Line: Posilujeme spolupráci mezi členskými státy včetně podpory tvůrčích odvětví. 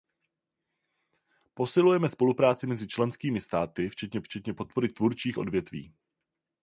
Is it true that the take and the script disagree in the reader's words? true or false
true